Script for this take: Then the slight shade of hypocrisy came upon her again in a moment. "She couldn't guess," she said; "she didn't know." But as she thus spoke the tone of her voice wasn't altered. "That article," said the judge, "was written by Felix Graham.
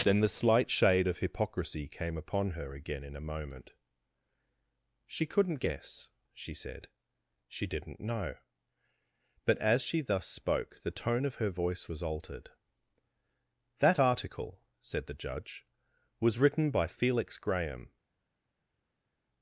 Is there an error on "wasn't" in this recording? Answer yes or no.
yes